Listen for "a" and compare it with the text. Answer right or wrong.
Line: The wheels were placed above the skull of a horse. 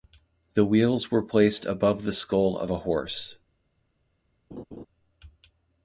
right